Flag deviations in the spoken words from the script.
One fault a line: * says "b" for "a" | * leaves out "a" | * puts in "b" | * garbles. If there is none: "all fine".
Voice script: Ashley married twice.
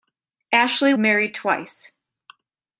all fine